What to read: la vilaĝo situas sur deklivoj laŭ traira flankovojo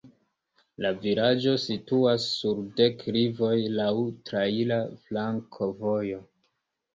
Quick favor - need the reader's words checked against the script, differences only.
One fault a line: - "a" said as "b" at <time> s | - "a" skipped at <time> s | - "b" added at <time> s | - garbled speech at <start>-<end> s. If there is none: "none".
none